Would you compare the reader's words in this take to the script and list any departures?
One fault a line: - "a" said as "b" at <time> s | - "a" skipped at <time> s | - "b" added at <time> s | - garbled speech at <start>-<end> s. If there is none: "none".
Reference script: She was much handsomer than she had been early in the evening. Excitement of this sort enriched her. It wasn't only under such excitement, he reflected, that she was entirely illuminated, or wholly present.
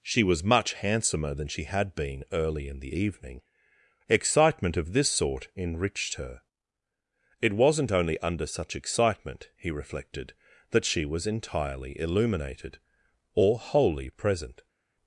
none